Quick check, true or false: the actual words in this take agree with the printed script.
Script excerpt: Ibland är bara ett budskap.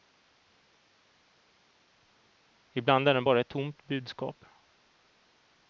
false